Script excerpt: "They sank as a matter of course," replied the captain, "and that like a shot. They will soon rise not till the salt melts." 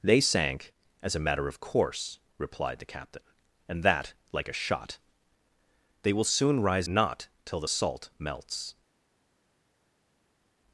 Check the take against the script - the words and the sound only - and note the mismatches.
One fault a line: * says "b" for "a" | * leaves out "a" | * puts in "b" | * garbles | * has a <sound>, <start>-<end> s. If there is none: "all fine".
all fine